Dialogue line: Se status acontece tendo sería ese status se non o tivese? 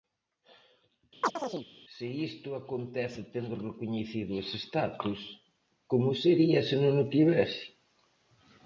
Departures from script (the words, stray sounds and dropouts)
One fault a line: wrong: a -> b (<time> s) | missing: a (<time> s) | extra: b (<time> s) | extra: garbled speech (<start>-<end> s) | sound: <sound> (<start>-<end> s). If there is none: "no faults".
sound: chirp (1.2-1.7 s)
wrong: status -> isto (2.3 s)
wrong: sería -> recoñecido (3.7 s)
extra: como sería (5.9 s)